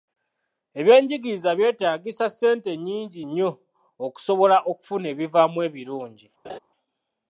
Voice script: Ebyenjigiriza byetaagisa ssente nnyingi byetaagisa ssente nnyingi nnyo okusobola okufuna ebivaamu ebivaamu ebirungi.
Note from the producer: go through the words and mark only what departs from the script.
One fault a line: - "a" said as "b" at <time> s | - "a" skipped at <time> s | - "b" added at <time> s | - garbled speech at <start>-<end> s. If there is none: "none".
- "byetaagisa ssente nnyingi" skipped at 3.2 s
- "ebivaamu" skipped at 5.6 s